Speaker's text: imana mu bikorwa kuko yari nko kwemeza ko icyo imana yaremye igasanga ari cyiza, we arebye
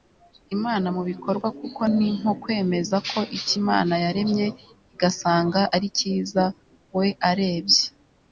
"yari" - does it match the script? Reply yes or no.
no